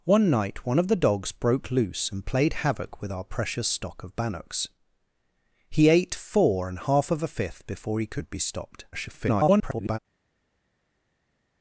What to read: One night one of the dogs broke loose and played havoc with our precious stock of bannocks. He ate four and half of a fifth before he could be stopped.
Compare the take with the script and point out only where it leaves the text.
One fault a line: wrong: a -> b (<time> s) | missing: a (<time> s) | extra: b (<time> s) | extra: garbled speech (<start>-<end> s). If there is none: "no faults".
extra: garbled speech (8.9-10.0 s)